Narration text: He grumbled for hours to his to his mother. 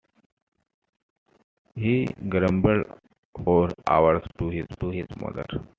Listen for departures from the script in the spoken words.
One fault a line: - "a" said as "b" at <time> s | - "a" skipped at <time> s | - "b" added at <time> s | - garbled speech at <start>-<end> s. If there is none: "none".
none